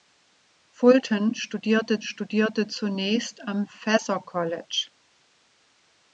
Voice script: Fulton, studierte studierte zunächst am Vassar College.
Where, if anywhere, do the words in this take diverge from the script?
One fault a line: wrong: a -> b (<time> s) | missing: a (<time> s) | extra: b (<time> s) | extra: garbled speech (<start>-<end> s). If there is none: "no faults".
no faults